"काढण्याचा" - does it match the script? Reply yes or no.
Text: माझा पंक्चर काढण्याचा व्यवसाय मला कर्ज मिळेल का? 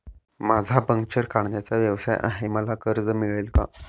yes